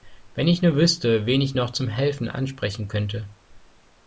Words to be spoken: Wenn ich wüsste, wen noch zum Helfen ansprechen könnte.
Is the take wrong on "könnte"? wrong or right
right